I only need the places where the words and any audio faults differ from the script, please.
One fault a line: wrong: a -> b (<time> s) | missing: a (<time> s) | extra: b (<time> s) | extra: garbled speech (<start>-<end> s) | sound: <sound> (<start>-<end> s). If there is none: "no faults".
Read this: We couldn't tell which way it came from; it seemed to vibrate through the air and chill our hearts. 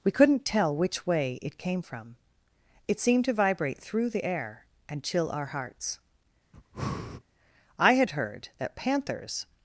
sound: breath (6.5-7.2 s)
extra: I had heard that panthers (7.8 s)